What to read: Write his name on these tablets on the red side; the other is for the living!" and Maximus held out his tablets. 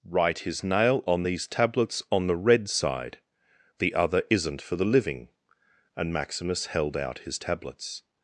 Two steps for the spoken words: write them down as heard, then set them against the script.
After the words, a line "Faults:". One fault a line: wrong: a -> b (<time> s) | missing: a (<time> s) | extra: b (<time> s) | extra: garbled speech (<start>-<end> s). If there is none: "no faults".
Write his nail on these tablets on the red side; the other isn't for the living!" and Maximus held out his tablets.
Faults:
wrong: name -> nail (0.6 s)
wrong: is -> isn't (4.3 s)